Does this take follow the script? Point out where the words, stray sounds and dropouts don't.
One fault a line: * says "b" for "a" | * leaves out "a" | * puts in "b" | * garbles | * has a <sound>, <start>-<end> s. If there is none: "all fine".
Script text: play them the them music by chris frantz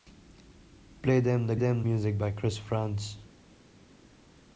all fine